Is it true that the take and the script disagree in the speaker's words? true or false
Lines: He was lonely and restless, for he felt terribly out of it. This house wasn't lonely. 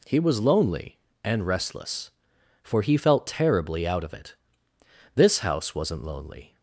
false